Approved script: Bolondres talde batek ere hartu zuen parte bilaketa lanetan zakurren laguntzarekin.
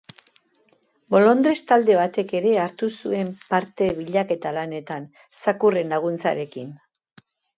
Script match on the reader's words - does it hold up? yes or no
yes